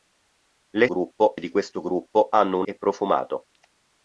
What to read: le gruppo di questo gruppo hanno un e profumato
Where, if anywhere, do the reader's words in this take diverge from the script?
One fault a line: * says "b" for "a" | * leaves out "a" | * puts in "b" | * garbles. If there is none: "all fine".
all fine